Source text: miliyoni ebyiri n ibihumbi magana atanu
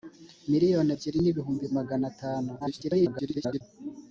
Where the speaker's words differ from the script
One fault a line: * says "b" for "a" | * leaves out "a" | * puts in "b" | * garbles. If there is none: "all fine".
* garbles